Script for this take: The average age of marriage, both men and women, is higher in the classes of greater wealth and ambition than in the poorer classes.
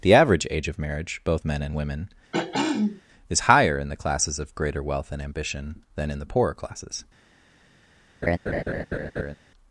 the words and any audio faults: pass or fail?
fail